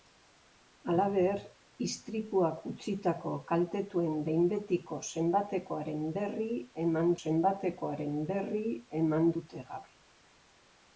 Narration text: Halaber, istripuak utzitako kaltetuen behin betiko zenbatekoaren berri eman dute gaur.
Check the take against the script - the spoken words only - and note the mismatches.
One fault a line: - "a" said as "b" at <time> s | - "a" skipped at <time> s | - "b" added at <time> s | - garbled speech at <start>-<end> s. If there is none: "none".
- "zenbatekoaren berri eman" added at 7.2 s